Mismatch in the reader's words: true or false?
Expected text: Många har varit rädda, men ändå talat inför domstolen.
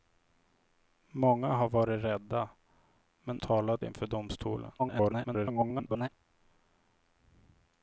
true